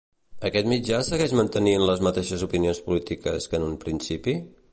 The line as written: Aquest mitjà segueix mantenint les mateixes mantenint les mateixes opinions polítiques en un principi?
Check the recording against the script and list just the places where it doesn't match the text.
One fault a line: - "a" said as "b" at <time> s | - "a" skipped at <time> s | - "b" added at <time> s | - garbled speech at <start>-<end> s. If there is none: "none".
- "mantenint les mateixes" skipped at 2.5 s
- "que" added at 3.5 s